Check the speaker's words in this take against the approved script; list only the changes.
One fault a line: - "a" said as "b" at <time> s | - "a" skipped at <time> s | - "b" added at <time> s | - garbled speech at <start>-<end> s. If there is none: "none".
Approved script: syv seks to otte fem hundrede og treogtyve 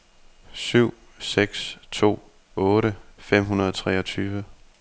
none